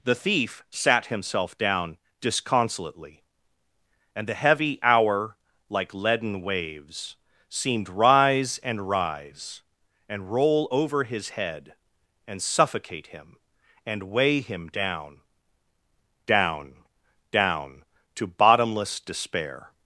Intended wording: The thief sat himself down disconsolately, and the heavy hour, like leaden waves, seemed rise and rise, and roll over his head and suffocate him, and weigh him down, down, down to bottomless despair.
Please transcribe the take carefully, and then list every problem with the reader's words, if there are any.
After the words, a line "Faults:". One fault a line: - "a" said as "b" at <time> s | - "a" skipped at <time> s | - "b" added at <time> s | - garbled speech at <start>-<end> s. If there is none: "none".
The thief sat himself down disconsolately, and the heavy hour, like leaden waves, seemed rise and rise, and roll over his head and suffocate him, and weigh him down, down, down to bottomless despair.
Faults:
none